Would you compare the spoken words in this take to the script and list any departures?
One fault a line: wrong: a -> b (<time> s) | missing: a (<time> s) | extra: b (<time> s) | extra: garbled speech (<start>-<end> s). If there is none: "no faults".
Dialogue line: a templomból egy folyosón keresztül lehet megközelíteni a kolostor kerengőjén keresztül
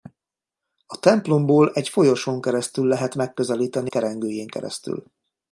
missing: a kolostor (3.9 s)